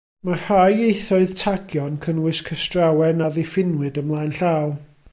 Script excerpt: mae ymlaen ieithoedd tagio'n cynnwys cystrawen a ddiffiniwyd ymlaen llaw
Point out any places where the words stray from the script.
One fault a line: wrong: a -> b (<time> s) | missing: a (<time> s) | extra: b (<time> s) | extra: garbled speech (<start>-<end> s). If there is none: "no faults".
wrong: ymlaen -> rhai (0.4 s)